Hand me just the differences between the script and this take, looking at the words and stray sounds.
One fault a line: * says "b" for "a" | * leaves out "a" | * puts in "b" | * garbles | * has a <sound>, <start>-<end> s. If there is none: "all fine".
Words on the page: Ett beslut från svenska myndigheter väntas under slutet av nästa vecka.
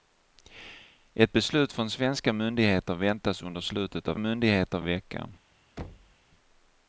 * says "myndigheter" for "nästa"
* has a thud, 5.8-6.1 s